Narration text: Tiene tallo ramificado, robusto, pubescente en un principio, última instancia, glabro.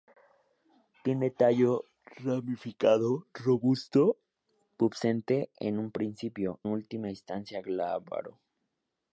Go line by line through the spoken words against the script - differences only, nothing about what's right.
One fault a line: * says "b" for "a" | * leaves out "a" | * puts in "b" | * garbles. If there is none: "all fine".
all fine